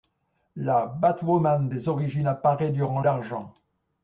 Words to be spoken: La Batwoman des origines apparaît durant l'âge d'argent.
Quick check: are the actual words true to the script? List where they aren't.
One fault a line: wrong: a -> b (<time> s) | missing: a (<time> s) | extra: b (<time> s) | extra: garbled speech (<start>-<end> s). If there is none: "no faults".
missing: l'âge (3.0 s)